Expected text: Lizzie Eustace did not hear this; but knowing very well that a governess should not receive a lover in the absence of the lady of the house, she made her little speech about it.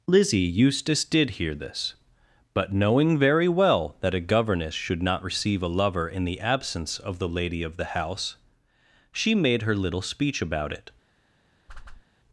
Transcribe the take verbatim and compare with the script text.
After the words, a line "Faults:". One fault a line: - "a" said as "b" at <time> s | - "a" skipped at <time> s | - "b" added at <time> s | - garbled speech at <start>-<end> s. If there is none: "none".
Lizzie Eustace did hear this; but knowing very well that a governess should not receive a lover in the absence of the lady of the house, she made her little speech about it.
Faults:
- "not" skipped at 1.3 s